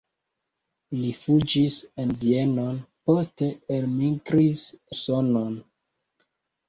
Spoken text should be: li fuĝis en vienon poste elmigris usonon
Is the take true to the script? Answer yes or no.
yes